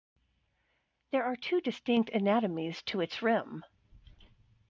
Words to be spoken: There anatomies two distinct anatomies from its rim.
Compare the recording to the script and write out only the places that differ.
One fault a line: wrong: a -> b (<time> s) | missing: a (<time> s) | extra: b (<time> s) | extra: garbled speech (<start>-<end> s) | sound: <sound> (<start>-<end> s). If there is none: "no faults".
wrong: anatomies -> are (1.2 s)
wrong: from -> to (2.8 s)